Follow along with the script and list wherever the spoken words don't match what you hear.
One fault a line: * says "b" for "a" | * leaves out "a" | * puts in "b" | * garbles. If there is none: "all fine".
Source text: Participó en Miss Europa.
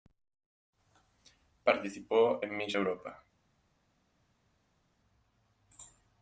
all fine